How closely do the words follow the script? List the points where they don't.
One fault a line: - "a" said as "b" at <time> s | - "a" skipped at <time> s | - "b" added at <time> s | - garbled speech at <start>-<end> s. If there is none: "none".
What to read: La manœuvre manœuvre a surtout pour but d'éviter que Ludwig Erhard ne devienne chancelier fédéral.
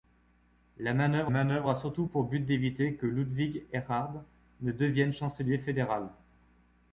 none